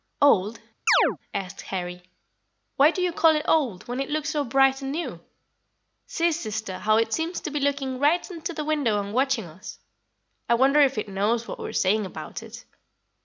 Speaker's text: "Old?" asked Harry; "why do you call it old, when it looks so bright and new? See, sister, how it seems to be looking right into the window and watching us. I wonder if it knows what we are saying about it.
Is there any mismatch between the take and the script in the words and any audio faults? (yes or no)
yes